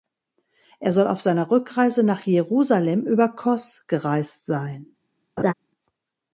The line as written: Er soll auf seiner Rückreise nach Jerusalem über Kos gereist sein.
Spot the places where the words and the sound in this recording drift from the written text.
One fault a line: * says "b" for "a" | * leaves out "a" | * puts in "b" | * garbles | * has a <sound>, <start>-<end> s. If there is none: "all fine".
* has a laugh, 5.4-5.5 s